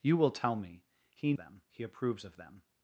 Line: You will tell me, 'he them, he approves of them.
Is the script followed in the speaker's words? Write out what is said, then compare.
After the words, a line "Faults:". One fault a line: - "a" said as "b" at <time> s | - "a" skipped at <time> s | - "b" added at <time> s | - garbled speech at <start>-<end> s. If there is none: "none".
You will tell me, 'he them, he approves of them.
Faults:
none